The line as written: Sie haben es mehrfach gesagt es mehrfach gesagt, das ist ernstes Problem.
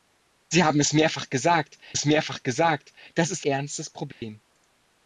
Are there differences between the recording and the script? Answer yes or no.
no